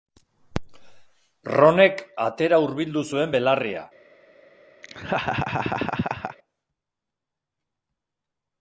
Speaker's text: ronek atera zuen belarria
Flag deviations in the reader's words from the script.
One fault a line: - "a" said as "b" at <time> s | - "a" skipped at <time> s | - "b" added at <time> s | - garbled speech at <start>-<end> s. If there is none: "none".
- "hurbildu" added at 2.6 s